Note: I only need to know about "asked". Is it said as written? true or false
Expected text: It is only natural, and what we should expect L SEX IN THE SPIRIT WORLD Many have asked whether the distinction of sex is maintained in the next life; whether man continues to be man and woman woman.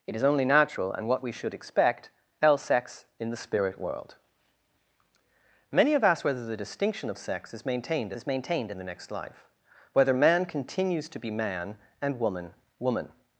true